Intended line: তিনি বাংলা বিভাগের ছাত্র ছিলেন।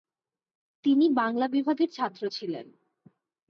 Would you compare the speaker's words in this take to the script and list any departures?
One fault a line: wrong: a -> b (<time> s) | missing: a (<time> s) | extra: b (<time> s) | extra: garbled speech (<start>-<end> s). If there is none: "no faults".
no faults